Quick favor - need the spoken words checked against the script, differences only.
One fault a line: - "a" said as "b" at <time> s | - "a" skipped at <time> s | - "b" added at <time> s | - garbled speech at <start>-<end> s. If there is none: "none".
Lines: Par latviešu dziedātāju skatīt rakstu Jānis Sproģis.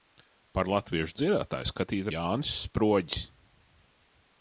- "rakstu" skipped at 2.1 s